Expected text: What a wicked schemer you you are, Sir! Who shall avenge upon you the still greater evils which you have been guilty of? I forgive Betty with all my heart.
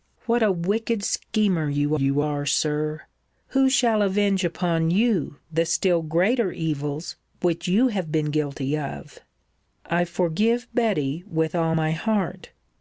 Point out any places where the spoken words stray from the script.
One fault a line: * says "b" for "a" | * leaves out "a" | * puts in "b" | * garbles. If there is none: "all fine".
all fine